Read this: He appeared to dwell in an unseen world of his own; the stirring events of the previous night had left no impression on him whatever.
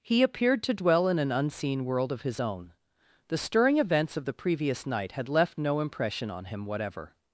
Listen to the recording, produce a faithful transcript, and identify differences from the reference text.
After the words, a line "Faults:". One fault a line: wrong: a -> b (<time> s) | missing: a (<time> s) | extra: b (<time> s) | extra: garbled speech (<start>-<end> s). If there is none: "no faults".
He appeared to dwell in an unseen world of his own; the stirring events of the previous night had left no impression on him whatever.
Faults:
no faults